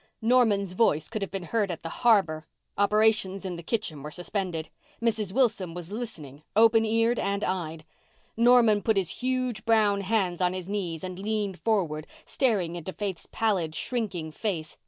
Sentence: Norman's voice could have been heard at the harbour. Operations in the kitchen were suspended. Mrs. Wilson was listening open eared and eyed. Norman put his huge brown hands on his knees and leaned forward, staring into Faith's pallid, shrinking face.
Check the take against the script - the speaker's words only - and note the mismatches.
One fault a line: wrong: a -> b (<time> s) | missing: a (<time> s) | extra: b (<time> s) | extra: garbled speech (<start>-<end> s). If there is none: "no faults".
no faults